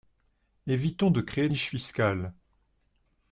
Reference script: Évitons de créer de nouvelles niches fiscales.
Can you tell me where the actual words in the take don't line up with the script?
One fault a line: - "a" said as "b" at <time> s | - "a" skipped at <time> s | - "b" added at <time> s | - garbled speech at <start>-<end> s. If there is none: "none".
- "de nouvelles" skipped at 1.5 s